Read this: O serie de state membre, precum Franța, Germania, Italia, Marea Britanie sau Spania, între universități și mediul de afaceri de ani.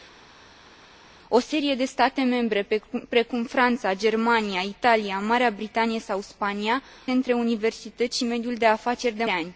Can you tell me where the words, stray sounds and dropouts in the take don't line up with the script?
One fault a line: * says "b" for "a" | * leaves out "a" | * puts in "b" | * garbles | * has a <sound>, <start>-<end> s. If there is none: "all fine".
all fine